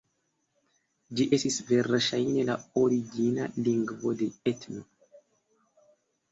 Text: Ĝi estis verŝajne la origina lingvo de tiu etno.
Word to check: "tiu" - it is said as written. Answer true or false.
false